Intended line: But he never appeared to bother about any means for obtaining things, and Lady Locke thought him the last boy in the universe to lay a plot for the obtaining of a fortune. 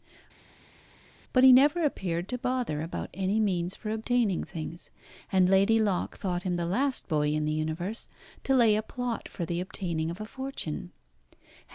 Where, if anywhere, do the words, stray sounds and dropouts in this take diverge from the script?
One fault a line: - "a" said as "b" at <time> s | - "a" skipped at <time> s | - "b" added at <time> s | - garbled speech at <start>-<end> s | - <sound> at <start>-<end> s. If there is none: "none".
none